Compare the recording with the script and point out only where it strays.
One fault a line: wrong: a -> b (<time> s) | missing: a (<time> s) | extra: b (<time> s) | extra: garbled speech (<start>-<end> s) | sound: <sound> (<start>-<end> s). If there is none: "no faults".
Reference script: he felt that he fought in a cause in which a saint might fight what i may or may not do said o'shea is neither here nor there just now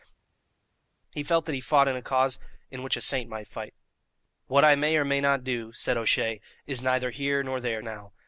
missing: just (7.8 s)